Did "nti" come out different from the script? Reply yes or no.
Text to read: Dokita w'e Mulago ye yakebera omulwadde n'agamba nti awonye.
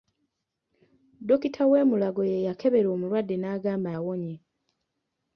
yes